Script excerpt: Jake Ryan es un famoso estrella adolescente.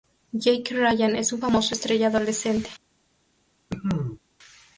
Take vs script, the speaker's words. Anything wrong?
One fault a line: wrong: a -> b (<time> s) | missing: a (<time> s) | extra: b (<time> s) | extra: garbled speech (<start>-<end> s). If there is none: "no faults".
no faults